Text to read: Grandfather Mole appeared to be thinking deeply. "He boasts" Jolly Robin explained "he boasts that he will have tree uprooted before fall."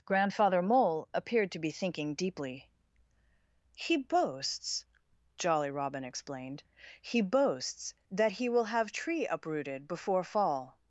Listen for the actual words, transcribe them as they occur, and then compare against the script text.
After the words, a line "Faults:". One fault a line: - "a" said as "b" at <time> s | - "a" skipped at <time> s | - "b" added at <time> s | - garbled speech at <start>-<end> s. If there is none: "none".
Grandfather Mole appeared to be thinking deeply. "He boasts" Jolly Robin explained "he boasts that he will have tree uprooted before fall."
Faults:
none